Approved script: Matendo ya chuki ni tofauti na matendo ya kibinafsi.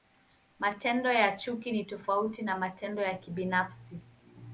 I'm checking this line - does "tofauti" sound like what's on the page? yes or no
yes